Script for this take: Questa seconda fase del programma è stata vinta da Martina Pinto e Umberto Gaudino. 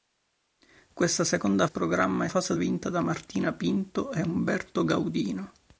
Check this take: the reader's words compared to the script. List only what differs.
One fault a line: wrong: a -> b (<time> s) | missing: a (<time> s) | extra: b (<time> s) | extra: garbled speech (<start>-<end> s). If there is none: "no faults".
missing: fase del (1.7 s)
wrong: stata -> fase (2.3 s)